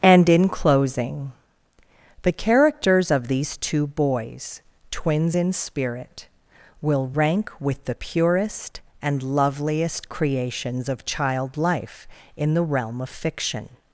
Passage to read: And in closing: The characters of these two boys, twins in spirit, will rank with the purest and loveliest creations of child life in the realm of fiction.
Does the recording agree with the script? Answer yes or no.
yes